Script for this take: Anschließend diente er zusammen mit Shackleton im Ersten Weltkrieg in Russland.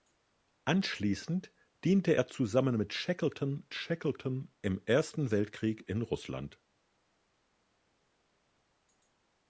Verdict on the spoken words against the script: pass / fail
fail